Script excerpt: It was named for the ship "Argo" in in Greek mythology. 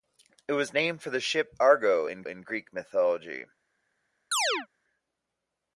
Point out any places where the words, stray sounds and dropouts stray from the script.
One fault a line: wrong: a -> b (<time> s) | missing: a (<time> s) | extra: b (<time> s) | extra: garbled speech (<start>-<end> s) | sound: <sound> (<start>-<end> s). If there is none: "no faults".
sound: chirp (4.3-4.7 s)